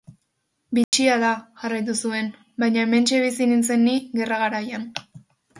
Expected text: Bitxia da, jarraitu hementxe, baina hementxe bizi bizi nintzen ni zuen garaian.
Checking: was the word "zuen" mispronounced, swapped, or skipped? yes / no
yes